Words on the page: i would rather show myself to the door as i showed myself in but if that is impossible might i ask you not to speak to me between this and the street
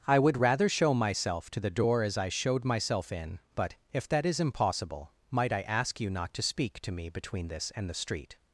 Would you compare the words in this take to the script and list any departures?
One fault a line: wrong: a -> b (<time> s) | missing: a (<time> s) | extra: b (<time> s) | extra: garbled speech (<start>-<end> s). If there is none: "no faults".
no faults